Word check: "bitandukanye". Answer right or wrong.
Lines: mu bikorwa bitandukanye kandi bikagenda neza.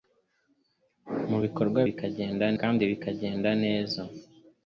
wrong